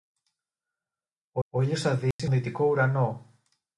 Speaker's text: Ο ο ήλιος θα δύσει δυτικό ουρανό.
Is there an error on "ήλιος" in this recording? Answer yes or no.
no